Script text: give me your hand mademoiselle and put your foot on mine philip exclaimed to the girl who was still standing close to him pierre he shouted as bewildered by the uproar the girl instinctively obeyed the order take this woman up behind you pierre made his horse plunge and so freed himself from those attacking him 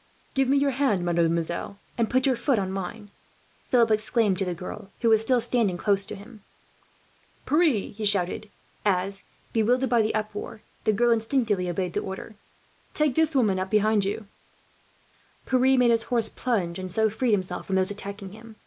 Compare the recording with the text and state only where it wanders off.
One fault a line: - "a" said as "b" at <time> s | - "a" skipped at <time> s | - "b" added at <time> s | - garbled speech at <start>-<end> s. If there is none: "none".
none